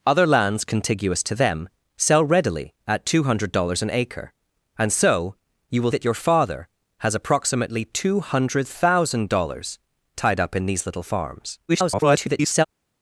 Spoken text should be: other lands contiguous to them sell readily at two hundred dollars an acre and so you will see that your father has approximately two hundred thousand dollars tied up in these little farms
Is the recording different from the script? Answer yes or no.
yes